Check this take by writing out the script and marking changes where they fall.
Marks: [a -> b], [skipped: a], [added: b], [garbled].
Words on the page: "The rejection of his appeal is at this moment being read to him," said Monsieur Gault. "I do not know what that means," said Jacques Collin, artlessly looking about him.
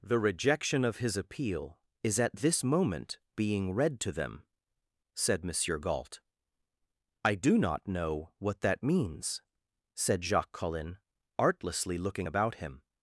"The rejection of his appeal is at this moment being read to [him," -> them] said Monsieur Gault. "I do not know what that means," said Jacques Collin, artlessly looking about him.